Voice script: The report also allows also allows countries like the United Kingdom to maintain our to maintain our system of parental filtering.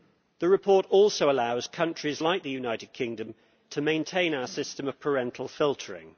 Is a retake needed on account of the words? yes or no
yes